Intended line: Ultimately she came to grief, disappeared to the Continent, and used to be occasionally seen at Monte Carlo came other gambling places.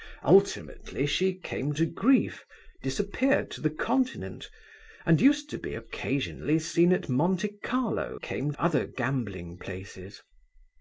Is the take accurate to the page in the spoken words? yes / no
yes